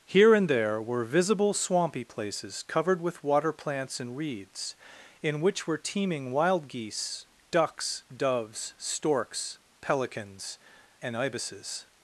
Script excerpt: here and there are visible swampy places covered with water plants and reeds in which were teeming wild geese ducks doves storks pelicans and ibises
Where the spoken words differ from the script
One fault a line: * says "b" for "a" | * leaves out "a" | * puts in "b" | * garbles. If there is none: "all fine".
* says "were" for "are"